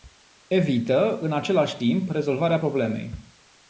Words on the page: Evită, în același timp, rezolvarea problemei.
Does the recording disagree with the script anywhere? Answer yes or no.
no